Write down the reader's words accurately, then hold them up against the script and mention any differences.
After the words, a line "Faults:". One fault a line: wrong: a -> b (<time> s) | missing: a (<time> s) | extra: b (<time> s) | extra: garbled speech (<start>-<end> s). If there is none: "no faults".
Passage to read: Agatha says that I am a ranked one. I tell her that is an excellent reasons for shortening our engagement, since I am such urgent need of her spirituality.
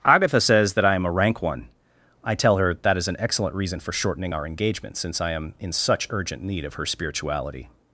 Agatha says that I am a rank one. I tell her that is an excellent reason for shortening our engagement, since I am in such urgent need of her spirituality.
Faults:
wrong: ranked -> rank (1.1 s)
wrong: reasons -> reason (3.5 s)
extra: in (5.6 s)